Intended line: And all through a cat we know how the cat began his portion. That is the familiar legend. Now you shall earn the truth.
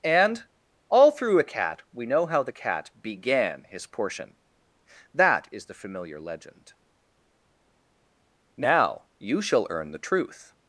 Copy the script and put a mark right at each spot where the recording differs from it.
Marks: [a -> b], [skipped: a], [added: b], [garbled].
And all through a cat we know how the cat began his portion. That is the familiar legend. Now you shall earn the truth.